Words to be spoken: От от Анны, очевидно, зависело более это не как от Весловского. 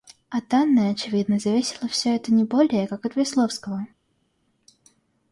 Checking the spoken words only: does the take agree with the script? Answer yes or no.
no